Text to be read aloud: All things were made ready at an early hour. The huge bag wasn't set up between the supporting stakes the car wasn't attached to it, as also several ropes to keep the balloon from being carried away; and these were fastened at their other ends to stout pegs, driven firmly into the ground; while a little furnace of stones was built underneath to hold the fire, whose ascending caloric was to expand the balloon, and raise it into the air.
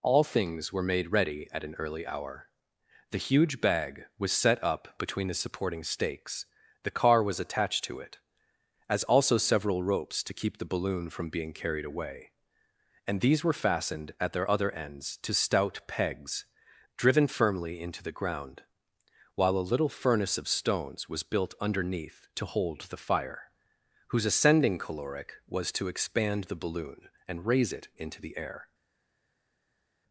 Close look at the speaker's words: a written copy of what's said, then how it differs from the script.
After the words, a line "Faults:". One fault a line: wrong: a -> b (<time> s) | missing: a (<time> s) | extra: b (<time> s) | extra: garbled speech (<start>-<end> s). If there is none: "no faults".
All things were made ready at an early hour. The huge bag was set up between the supporting stakes the car was attached to it, as also several ropes to keep the balloon from being carried away; and these were fastened at their other ends to stout pegs, driven firmly into the ground; while a little furnace of stones was built underneath to hold the fire, whose ascending caloric was to expand the balloon, and raise it into the air.
Faults:
wrong: wasn't -> was (4.2 s)
wrong: wasn't -> was (7.2 s)